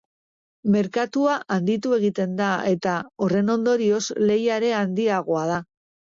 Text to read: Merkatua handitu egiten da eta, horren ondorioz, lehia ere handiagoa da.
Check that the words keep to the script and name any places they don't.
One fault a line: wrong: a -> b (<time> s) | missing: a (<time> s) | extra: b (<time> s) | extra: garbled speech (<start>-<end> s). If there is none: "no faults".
no faults